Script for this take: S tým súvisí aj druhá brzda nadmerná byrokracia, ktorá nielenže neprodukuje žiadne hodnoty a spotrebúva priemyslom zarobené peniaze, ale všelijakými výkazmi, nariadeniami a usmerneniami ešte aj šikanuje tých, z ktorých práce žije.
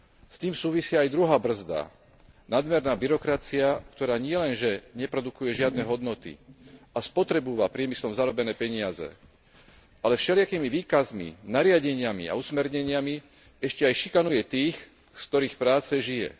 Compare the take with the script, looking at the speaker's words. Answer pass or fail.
pass